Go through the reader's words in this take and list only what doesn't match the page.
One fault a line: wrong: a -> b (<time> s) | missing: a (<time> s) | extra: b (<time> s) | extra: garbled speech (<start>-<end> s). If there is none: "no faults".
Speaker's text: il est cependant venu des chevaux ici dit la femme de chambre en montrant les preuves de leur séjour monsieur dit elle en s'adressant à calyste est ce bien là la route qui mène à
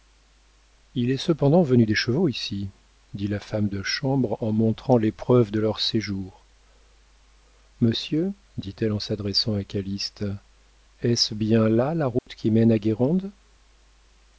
no faults